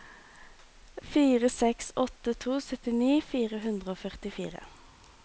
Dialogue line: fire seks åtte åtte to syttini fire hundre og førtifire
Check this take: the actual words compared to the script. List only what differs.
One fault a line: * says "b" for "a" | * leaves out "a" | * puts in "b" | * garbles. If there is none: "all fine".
* leaves out "åtte"